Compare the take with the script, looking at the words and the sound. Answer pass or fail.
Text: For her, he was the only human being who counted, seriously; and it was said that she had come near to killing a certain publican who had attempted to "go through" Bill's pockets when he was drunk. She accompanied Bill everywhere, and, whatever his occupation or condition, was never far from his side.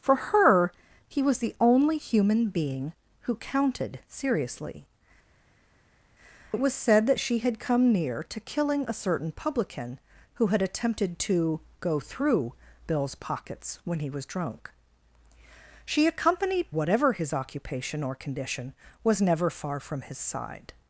fail